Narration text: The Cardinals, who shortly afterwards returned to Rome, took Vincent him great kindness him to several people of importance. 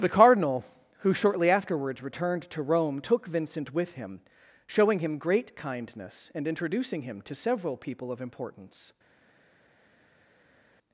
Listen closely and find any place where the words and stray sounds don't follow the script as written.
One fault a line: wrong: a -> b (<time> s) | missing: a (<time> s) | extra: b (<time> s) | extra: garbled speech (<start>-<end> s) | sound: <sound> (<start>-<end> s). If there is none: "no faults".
wrong: Cardinals -> Cardinal (0.1 s)
extra: with (3.7 s)
extra: showing him (4.7 s)
extra: and introducing (6.3 s)